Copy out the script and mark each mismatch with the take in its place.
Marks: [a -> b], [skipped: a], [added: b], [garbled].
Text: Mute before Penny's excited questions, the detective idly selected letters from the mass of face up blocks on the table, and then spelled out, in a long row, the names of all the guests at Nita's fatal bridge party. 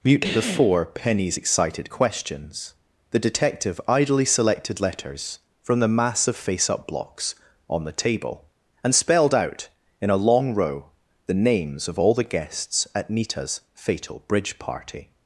Mute before Penny's excited questions, the detective idly selected letters from the mass of face up blocks on the table, and [skipped: then] spelled out, in a long row, the names of all the guests at Nita's fatal bridge party.